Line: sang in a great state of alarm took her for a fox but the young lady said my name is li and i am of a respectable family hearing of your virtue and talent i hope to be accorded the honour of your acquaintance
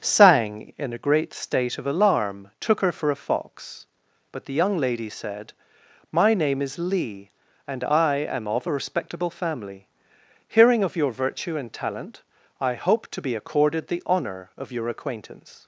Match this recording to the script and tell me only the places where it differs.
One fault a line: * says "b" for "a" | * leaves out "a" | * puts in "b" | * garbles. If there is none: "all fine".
all fine